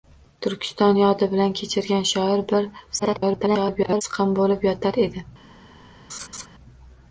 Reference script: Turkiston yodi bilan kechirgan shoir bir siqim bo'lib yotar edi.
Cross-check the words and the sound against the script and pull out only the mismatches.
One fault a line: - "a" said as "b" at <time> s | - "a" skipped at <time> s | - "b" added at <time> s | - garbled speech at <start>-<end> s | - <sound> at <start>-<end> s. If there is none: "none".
- garbled speech at 3.0-4.0 s
- laugh at 6.1-6.5 s